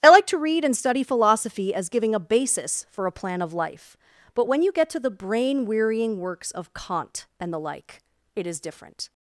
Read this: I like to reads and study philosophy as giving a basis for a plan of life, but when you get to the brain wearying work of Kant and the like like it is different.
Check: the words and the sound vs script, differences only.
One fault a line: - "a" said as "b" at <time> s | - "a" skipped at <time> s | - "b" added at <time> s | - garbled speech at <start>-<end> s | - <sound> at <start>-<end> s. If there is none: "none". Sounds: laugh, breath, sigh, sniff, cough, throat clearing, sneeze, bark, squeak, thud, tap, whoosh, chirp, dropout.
- "reads" said as "read" at 0.4 s
- "work" said as "works" at 6.2 s
- "like" skipped at 8.0 s